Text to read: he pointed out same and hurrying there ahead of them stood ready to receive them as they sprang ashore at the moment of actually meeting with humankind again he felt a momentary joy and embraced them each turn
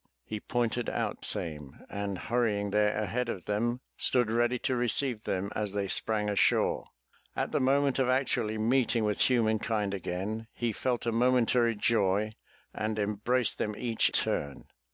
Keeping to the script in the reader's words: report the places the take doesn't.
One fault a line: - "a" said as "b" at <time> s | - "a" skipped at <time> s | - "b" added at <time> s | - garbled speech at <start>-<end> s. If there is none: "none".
none